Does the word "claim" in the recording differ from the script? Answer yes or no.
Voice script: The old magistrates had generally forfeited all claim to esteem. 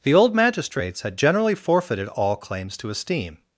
yes